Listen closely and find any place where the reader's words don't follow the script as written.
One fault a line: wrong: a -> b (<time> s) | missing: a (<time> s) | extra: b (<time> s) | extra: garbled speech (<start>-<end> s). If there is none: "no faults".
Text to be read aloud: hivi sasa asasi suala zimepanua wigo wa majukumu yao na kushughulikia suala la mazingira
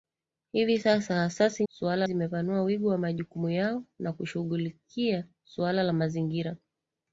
no faults